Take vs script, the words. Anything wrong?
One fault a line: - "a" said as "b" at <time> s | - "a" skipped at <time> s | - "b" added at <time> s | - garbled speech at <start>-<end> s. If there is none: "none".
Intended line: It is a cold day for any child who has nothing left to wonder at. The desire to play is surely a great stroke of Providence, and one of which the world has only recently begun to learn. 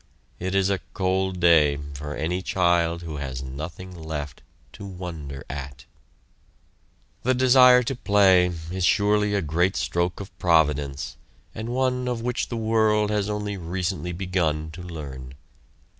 none